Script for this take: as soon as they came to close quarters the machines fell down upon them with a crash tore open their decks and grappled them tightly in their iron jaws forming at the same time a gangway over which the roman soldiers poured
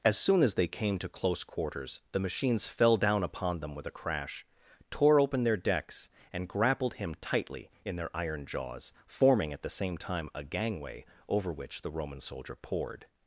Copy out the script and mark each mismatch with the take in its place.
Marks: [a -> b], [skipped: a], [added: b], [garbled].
as soon as they came to close quarters the machines fell down upon them with a crash tore open their decks and grappled [them -> him] tightly in their iron jaws forming at the same time a gangway over which the roman [soldiers -> soldier] poured